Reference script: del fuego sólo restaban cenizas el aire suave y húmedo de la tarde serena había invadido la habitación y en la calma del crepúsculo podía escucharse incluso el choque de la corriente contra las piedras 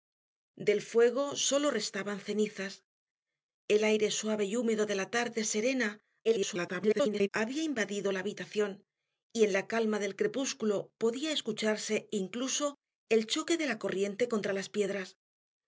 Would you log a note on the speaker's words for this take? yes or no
yes